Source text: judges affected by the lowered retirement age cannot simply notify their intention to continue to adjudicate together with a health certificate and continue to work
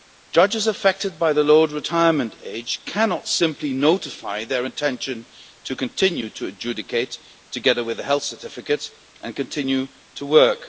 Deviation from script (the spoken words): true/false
false